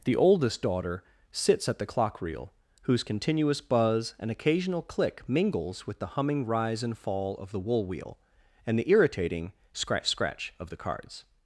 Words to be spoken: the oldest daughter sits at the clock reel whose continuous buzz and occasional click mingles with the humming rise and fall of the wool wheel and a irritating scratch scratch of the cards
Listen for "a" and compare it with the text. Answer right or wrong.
wrong